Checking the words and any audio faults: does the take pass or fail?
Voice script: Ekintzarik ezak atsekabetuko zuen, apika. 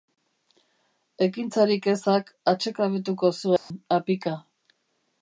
fail